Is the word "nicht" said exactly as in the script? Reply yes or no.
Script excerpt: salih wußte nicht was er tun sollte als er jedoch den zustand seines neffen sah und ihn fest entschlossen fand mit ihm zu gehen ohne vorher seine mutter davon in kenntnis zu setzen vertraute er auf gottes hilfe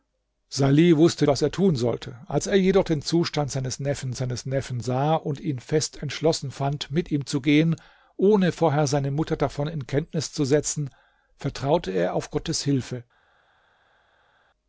no